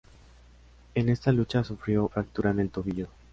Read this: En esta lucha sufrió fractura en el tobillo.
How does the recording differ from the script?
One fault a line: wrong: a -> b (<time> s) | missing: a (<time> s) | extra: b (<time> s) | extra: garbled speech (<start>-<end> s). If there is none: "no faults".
no faults